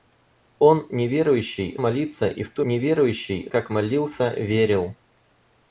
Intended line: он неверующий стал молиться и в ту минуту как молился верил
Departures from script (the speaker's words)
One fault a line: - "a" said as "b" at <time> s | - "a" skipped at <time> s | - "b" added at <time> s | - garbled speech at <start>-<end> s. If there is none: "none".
- "стал" skipped at 1.8 s
- "минуту" said as "неверующий" at 2.6 s